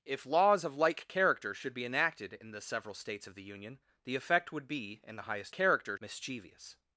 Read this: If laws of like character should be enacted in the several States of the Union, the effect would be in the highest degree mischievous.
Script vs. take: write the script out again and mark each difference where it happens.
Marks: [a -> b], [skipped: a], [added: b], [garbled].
If laws of like character should be enacted in the several States of the Union, the effect would be in the highest [degree -> character] mischievous.